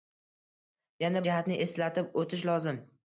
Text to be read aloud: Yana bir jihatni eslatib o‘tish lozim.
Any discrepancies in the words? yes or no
yes